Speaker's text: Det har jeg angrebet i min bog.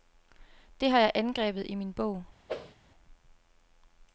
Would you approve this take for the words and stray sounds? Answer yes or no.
no